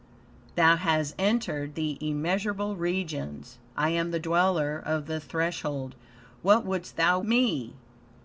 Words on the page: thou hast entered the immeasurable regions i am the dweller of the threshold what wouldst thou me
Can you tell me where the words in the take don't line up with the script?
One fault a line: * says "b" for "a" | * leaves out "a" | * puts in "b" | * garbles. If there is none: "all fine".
all fine